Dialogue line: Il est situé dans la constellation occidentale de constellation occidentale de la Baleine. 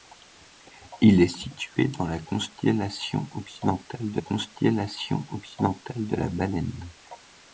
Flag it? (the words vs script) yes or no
no